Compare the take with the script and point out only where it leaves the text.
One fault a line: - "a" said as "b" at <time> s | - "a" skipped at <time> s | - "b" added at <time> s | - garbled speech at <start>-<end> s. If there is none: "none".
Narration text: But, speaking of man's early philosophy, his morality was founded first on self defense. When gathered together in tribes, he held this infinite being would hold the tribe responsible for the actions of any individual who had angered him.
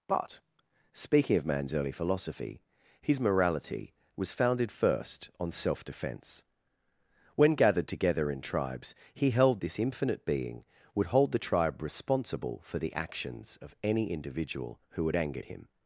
none